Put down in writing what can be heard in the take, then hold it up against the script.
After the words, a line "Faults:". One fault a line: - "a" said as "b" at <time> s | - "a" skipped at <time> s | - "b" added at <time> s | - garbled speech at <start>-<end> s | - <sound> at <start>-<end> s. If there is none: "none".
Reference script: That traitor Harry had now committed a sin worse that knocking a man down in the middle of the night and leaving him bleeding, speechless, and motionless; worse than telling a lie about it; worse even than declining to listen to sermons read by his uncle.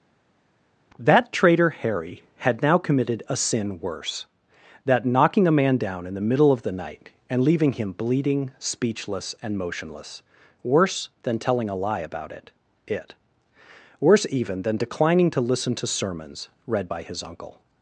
That traitor Harry had now committed a sin worse that knocking a man down in the middle of the night and leaving him bleeding, speechless, and motionless; worse than telling a lie about it it; worse even than declining to listen to sermons read by his uncle.
Faults:
- "it" added at 12.9 s